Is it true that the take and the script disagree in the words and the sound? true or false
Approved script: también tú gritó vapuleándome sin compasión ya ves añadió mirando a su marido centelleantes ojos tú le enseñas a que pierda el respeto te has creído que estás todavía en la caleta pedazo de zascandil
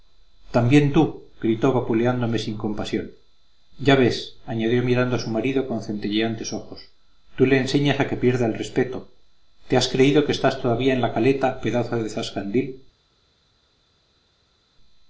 true